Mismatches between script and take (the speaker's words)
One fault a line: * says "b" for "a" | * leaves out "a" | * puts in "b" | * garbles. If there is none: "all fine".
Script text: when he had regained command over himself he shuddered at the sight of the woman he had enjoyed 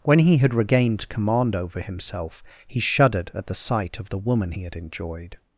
all fine